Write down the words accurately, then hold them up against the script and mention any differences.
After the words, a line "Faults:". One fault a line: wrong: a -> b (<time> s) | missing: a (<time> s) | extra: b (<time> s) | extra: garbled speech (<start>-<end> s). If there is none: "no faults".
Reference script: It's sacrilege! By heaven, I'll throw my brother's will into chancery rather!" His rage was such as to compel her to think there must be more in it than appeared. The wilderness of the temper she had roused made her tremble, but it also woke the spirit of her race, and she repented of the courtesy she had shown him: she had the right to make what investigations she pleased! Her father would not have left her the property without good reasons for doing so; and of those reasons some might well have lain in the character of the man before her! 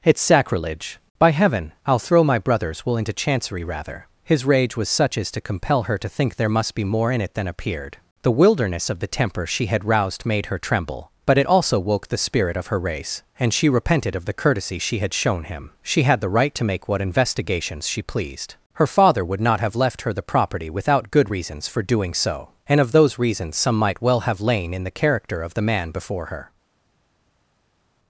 It's sacrilege! By heaven, I'll throw my brother's will into chancery rather!" His rage was such as to compel her to think there must be more in it than appeared. The wilderness of the temper she had roused made her tremble, but it also woke the spirit of her race, and she repented of the courtesy she had shown him: she had the right to make what investigations she pleased! Her father would not have left her the property without good reasons for doing so; and of those reasons some might well have lain in the character of the man before her!
Faults:
no faults